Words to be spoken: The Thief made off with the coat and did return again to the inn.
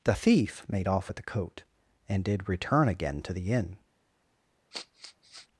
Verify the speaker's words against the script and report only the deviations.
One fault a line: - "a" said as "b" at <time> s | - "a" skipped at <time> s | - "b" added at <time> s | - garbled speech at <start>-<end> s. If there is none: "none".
none